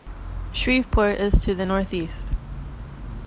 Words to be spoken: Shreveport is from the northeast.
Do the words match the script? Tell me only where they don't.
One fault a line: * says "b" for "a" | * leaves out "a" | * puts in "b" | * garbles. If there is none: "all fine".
* says "to" for "from"